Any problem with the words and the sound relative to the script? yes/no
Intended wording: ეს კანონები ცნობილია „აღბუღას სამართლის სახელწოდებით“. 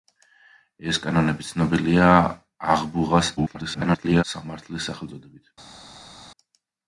yes